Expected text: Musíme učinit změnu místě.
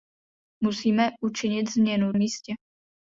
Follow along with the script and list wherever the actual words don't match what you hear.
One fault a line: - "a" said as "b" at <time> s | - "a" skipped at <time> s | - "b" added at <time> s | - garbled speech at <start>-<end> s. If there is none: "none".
none